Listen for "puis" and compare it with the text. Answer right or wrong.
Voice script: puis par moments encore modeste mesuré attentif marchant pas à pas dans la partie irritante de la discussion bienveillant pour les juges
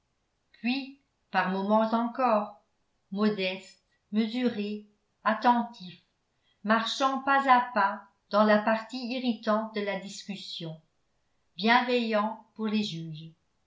right